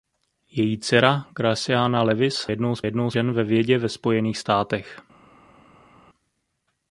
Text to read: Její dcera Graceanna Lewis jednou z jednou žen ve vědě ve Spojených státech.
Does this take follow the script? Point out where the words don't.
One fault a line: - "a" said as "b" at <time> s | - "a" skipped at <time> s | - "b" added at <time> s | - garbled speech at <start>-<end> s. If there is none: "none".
none